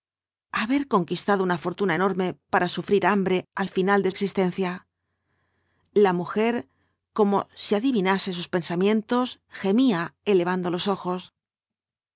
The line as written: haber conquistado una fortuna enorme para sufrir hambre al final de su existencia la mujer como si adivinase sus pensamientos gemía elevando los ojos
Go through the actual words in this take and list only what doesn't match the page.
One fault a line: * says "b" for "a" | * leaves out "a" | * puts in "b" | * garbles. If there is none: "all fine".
* leaves out "su"